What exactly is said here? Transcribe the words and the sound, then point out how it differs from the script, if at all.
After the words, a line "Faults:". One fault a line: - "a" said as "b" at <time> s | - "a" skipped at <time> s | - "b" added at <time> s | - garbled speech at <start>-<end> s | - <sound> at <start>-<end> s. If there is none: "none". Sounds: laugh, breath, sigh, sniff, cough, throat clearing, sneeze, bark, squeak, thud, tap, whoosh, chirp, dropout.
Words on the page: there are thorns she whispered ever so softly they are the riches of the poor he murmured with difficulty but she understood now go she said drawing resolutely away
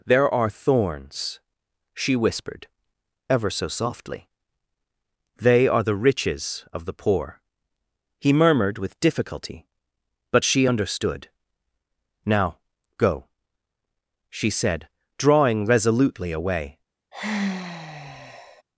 there are thorns she whispered ever so softly they are the riches of the poor he murmured with difficulty but she understood now go she said drawing resolutely away
Faults:
- sigh at 17.1-18.6 s